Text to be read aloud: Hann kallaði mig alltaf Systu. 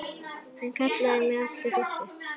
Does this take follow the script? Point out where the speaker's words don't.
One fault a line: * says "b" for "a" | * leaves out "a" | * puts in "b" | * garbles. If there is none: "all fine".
all fine